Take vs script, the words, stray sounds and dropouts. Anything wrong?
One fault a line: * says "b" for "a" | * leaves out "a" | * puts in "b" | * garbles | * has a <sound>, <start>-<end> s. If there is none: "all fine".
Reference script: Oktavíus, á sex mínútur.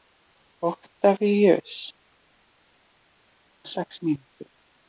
all fine